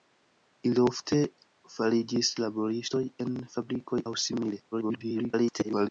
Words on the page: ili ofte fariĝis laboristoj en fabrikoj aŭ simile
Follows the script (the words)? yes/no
no